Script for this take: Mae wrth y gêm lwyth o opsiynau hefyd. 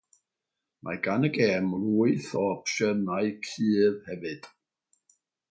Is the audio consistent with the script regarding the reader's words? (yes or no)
no